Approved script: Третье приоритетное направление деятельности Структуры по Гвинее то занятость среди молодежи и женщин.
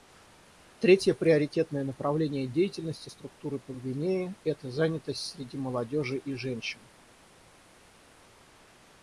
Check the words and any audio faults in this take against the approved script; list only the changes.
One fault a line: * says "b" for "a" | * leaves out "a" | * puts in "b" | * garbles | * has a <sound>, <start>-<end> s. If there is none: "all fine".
* says "это" for "то"